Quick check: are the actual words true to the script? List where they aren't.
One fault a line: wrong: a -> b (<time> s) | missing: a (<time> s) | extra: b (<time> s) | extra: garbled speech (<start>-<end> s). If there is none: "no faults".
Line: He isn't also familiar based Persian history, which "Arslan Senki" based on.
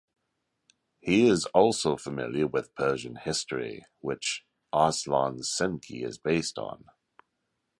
wrong: isn't -> is (1.3 s)
wrong: based -> with (2.5 s)
extra: is (6.0 s)